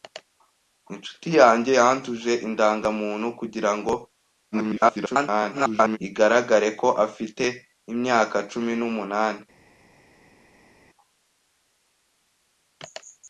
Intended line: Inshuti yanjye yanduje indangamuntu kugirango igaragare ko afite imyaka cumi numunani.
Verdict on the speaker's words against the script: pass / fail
fail